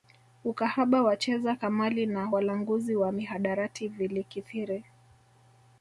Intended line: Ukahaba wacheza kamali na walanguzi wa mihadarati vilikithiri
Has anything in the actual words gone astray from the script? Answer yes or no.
no